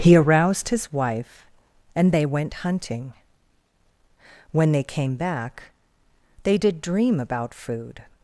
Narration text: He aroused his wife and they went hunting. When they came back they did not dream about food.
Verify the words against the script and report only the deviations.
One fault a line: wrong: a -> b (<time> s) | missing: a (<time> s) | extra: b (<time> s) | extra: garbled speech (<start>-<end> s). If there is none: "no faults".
missing: not (6.8 s)